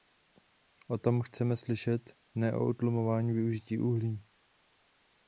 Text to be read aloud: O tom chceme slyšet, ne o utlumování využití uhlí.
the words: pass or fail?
pass